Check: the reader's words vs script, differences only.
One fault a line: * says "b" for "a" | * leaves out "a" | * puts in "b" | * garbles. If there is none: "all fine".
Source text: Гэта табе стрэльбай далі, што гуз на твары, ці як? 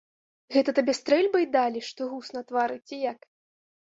all fine